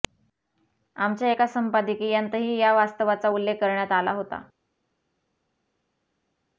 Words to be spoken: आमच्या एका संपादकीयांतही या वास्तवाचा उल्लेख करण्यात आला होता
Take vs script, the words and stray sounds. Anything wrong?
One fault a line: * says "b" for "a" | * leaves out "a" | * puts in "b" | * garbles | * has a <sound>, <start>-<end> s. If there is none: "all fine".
all fine